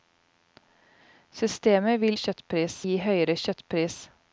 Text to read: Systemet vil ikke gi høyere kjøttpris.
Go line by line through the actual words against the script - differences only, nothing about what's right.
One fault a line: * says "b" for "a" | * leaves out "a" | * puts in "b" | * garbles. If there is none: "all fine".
* says "kjøttpris" for "ikke"